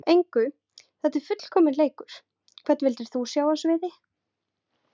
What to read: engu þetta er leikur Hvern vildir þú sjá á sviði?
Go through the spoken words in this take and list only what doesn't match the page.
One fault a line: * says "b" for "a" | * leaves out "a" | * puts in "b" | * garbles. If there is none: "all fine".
* puts in "fullkominn"